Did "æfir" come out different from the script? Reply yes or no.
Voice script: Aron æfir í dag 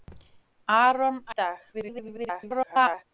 yes